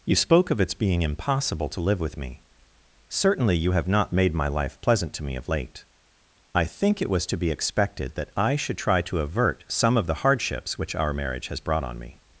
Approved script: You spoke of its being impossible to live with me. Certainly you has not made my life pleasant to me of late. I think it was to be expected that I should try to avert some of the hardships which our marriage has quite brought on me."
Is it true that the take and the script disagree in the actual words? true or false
true